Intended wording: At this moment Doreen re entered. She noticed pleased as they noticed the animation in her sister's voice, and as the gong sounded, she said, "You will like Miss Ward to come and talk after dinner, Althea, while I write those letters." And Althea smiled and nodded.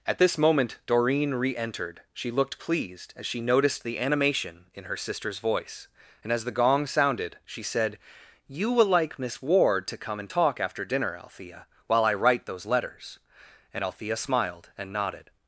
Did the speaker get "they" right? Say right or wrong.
wrong